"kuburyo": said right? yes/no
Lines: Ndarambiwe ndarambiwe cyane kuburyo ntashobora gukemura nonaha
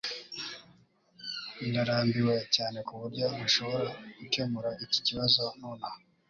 yes